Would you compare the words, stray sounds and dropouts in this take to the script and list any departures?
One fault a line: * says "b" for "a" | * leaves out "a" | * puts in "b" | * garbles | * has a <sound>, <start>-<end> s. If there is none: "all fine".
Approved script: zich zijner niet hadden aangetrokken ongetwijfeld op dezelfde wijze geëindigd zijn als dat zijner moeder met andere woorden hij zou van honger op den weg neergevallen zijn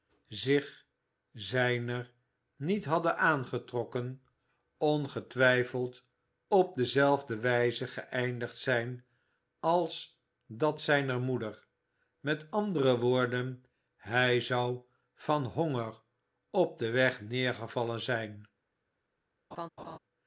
* has a laugh, 19.5-20.0 s